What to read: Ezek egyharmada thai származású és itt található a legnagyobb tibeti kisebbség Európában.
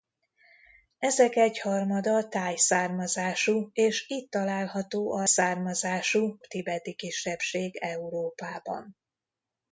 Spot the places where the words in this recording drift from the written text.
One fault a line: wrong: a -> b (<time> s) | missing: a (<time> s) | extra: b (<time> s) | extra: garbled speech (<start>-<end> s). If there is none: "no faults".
wrong: legnagyobb -> származású (5.2 s)